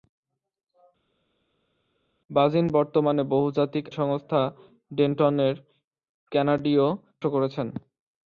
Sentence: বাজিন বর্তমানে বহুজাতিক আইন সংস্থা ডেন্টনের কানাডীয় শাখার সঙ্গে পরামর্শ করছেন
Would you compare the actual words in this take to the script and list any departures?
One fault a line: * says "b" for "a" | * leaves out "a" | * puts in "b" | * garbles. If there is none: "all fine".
* leaves out "আইন"
* leaves out "শাখার সঙ্গে পরামর্শ"